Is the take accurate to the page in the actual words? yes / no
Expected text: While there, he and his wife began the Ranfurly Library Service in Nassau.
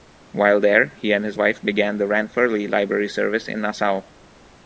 yes